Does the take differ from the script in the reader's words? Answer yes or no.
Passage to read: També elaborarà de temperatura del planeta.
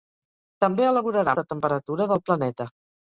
no